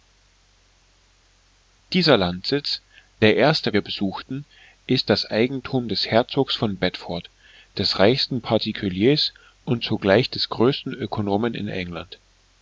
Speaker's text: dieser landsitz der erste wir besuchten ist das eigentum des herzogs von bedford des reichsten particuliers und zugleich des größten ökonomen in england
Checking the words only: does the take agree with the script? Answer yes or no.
yes